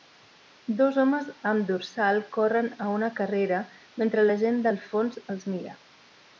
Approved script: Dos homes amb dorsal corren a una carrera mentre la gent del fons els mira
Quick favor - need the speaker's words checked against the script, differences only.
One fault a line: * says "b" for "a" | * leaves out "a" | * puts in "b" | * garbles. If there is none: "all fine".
all fine